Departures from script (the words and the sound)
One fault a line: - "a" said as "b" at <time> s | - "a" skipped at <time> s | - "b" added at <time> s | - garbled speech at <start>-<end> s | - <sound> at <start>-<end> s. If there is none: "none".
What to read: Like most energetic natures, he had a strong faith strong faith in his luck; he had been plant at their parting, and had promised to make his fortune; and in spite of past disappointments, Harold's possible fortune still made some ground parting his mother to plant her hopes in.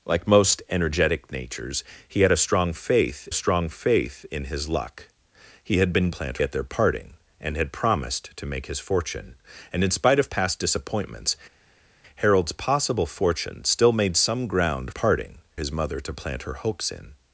none